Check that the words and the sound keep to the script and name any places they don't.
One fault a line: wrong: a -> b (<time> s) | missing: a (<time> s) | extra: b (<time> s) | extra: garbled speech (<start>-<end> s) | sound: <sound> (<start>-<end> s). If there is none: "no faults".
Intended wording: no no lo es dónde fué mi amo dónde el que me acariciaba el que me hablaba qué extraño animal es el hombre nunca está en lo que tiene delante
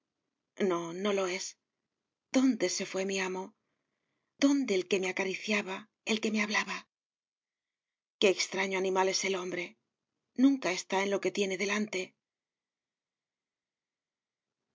extra: se (2.7 s)